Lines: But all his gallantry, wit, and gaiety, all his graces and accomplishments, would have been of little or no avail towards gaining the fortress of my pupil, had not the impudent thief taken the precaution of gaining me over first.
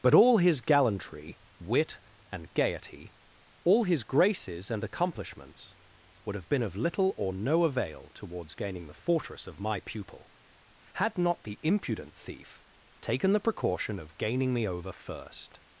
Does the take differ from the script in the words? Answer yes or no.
no